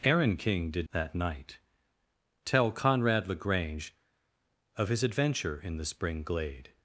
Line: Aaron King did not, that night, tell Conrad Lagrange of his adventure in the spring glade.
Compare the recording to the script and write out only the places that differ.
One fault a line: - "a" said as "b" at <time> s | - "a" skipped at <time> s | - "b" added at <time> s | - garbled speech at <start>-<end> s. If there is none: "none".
- "not" skipped at 0.9 s